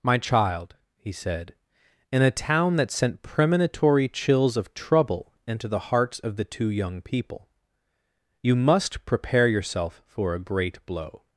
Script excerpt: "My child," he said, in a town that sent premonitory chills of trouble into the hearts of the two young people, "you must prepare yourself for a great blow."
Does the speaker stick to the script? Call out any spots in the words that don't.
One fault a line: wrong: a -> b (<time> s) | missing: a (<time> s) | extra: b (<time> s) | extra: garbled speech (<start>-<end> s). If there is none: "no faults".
no faults